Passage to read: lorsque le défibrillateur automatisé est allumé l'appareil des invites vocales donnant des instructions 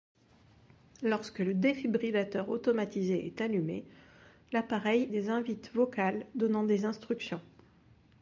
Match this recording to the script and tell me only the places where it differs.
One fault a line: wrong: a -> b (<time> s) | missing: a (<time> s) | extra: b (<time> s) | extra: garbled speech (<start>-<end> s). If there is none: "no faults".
no faults